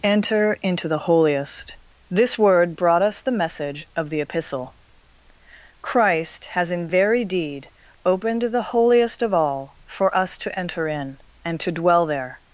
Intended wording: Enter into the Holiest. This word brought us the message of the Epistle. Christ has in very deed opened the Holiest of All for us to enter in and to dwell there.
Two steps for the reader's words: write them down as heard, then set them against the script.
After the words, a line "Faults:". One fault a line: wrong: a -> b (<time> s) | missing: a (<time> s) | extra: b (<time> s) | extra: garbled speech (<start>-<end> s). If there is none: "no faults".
Enter into the Holiest. This word brought us the message of the Epistle. Christ has in very deed opened the Holiest of All for us to enter in and to dwell there.
Faults:
no faults